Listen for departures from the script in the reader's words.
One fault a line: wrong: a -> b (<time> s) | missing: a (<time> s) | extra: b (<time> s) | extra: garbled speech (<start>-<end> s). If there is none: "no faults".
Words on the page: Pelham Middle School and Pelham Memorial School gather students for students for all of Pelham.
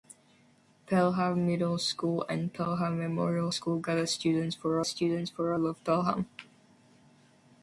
no faults